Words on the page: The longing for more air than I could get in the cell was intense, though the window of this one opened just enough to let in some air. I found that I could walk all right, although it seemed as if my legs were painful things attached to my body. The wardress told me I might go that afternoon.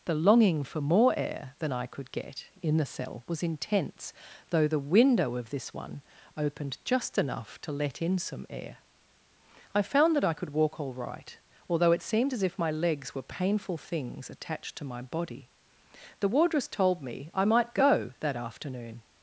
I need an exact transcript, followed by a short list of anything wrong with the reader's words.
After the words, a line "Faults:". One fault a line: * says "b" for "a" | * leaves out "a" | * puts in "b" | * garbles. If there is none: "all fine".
The longing for more air than I could get in the cell was intense, though the window of this one opened just enough to let in some air. I found that I could walk all right, although it seemed as if my legs were painful things attached to my body. The wardress told me I might go that afternoon.
Faults:
all fine